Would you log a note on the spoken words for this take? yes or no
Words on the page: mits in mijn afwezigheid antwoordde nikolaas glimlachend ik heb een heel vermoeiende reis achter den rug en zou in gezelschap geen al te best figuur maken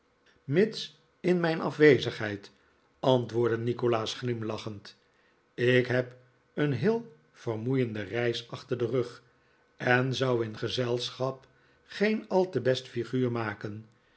no